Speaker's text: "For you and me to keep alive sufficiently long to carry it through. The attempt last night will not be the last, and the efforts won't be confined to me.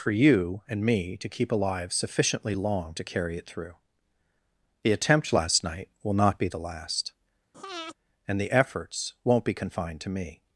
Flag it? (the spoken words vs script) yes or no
no